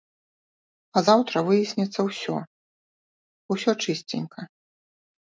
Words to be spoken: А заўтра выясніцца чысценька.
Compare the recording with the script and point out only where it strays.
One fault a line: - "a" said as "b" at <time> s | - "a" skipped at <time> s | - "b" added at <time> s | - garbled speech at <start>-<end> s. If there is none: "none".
- "ўсё усё" added at 2.1 s